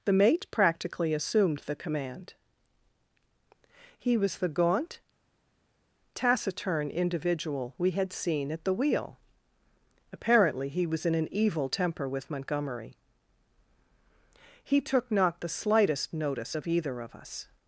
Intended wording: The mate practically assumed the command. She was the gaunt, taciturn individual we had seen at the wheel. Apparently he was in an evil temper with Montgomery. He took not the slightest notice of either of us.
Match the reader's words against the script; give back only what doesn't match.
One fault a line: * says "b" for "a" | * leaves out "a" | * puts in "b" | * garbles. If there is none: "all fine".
* says "He" for "She"